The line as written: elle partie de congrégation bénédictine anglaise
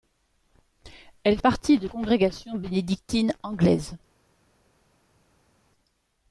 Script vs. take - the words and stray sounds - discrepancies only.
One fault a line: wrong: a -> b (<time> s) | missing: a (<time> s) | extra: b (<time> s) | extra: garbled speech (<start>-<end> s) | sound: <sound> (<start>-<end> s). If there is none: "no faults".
no faults